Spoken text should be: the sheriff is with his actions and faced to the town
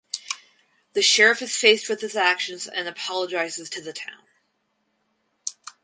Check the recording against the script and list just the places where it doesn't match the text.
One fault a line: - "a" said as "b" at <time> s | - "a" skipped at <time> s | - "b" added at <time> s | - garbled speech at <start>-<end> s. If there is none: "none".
- "faced" added at 1.5 s
- "faced" said as "apologizes" at 2.9 s